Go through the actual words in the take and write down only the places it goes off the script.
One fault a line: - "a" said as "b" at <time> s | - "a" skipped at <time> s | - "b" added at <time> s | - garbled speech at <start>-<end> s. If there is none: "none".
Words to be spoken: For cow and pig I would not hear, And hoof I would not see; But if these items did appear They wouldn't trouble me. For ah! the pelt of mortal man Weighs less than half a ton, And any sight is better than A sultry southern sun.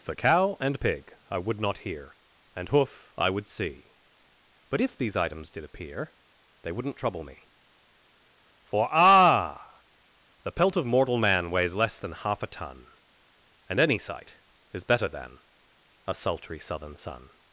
- "not" skipped at 3.5 s